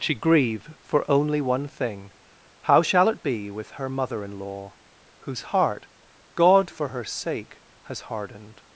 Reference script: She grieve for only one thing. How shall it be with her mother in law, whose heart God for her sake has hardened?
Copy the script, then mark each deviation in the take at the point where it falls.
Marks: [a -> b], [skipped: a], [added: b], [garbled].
She grieve for only one thing. How shall it be with her mother in law, whose heart God for her sake has hardened?